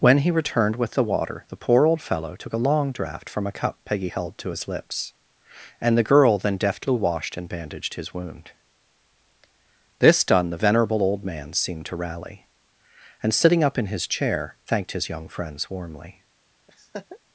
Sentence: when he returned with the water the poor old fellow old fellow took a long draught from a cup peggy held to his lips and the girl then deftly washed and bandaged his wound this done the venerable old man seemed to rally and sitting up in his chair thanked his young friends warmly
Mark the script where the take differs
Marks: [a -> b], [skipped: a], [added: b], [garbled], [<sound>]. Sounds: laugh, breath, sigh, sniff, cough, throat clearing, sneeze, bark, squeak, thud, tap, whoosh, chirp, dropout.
when he returned with the water the poor old fellow [skipped: old fellow] took a long draught from a cup peggy held to his lips and the girl then deftly washed and bandaged his wound this done the venerable old man seemed to rally and sitting up in his chair thanked his young friends warmly [laugh]